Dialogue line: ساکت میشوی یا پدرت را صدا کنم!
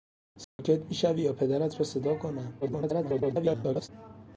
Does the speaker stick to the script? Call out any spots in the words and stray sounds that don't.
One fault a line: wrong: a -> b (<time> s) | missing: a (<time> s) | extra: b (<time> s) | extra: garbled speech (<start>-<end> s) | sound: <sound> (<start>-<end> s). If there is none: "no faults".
sound: dropout (0.4-0.6 s)
extra: garbled speech (2.6-3.9 s)